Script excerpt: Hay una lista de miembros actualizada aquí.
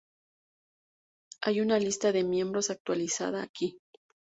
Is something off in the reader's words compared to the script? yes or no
no